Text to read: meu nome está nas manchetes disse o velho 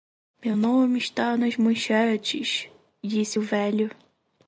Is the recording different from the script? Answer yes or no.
no